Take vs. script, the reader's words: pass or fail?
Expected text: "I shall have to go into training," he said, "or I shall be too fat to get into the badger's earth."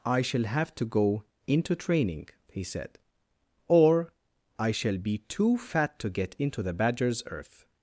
pass